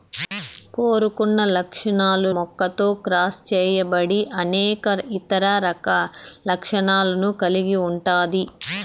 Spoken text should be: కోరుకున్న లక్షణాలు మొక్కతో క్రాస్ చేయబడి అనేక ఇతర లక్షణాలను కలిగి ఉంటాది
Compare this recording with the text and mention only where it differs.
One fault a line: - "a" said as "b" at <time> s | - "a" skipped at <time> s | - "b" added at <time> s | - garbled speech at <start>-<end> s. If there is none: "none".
none